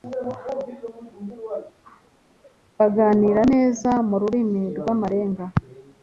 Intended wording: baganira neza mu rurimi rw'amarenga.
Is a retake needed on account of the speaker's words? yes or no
no